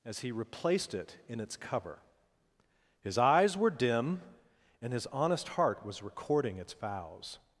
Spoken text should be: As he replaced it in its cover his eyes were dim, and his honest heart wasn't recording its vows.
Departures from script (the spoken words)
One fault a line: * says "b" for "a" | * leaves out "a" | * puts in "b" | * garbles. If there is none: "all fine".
* says "was" for "wasn't"